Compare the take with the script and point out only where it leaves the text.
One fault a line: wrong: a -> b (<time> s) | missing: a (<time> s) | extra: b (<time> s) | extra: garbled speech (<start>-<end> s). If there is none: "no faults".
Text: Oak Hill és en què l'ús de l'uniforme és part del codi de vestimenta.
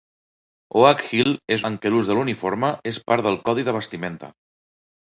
no faults